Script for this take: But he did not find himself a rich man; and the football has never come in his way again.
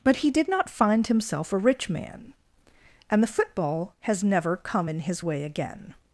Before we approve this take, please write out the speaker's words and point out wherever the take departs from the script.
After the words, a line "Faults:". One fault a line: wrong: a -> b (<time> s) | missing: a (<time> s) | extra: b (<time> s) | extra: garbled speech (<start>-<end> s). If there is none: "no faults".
But he did not find himself a rich man; and the football has never come in his way again.
Faults:
no faults